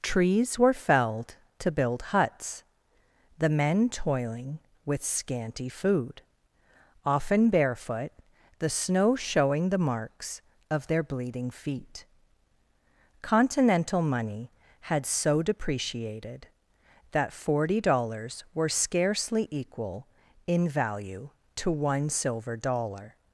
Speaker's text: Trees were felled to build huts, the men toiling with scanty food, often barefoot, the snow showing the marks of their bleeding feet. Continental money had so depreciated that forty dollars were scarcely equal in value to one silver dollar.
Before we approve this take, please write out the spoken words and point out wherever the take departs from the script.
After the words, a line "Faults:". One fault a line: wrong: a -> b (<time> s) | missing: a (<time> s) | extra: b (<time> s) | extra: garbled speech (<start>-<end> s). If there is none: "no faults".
Trees were felled to build huts, the men toiling with scanty food, often barefoot, the snow showing the marks of their bleeding feet. Continental money had so depreciated that forty dollars were scarcely equal in value to one silver dollar.
Faults:
no faults